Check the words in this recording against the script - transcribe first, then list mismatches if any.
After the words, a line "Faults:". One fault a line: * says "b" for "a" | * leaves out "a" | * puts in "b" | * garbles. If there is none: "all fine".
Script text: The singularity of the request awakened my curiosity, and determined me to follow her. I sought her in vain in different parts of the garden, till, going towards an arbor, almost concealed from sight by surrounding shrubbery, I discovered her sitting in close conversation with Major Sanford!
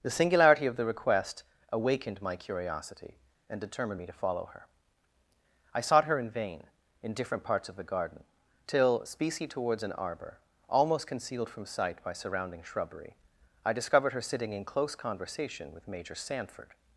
The singularity of the request awakened my curiosity, and determined me to follow her. I sought her in vain in different parts of the garden, till, specie towards an arbor, almost concealed from sight by surrounding shrubbery, I discovered her sitting in close conversation with Major Sanford!
Faults:
* says "specie" for "going"